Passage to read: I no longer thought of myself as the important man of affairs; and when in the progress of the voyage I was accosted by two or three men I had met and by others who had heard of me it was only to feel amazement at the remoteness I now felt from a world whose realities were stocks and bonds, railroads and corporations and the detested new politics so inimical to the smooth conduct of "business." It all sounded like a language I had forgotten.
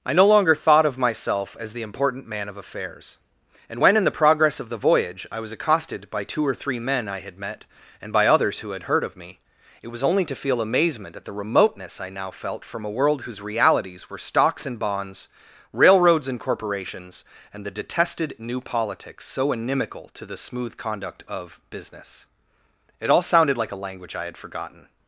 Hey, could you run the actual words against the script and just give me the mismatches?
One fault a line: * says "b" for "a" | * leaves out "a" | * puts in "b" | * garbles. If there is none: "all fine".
all fine